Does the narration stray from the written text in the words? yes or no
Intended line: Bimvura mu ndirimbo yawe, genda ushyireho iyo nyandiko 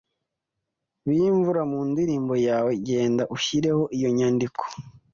no